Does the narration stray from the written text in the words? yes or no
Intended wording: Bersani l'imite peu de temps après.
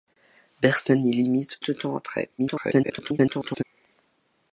yes